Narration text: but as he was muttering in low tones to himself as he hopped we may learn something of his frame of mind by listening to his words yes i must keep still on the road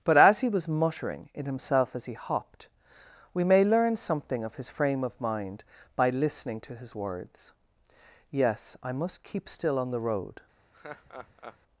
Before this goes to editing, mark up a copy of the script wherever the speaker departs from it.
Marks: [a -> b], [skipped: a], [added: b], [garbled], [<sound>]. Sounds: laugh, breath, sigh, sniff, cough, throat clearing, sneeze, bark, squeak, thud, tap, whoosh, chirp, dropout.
but as he was muttering in [skipped: low tones to] himself as he hopped we may learn something of his frame of mind by listening to his words yes i must keep still on the road [laugh]